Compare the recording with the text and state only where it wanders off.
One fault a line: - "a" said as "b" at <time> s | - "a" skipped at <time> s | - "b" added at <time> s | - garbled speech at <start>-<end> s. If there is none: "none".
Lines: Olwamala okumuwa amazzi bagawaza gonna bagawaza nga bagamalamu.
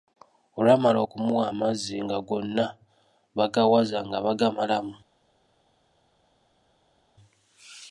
- "bagawaza" said as "nga" at 2.0 s